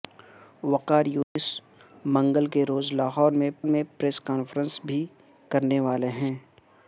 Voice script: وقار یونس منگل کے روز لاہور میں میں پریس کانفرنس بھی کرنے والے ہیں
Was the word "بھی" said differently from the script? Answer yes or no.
no